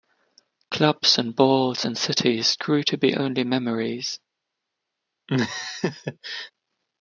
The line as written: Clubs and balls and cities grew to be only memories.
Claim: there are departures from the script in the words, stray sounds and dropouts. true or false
true